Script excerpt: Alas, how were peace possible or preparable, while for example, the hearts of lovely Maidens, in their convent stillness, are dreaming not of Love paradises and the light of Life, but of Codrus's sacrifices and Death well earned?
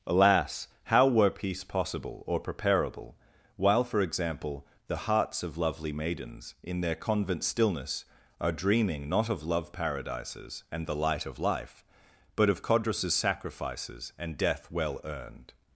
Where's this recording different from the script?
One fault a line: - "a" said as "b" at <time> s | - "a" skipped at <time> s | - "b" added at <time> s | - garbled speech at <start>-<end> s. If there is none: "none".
none